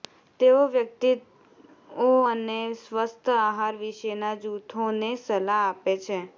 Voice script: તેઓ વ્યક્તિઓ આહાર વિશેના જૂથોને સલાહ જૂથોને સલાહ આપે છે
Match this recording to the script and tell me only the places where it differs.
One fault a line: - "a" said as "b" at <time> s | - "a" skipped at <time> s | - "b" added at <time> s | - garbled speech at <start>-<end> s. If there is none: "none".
- "અને સ્વસ્થ" added at 2.3 s
- "જૂથોને સલાહ" skipped at 5.6 s